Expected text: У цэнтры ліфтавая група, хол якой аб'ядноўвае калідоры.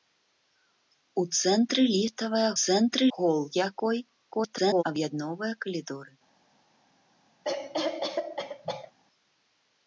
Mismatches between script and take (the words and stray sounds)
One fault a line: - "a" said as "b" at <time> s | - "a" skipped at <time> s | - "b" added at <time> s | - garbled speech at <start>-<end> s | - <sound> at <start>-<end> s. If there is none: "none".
- "група" said as "цэнтры" at 2.6 s
- garbled speech at 4.3-4.8 s
- cough at 7.4-8.9 s